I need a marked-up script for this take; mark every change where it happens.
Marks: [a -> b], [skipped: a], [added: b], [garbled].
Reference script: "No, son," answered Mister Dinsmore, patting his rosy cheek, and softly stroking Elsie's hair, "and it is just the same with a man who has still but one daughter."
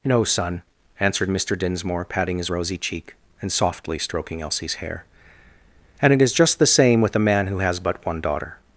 "No, son," answered Mister Dinsmore, patting his rosy cheek, and softly stroking Elsie's hair, "and it is just the same with a man who has [skipped: still] but one daughter."